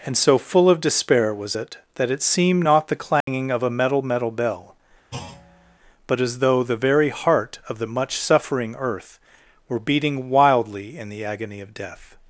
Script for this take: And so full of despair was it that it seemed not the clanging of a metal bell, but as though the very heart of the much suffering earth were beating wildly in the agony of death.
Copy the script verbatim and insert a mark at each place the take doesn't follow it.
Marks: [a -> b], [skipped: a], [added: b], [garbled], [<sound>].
And so full of despair was it that it seemed not the clanging [dropout] of a metal [added: metal] bell, [thud] but as though the very heart of the much suffering earth were beating wildly in the agony of death.